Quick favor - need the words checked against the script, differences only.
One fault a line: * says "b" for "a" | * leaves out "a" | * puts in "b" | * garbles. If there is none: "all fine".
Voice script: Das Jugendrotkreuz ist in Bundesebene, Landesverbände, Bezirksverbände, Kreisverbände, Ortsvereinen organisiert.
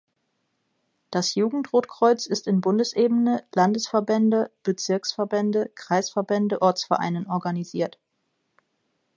all fine